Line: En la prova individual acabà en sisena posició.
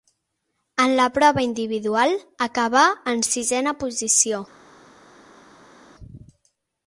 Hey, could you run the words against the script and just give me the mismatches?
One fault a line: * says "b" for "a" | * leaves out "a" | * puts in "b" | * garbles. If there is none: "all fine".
all fine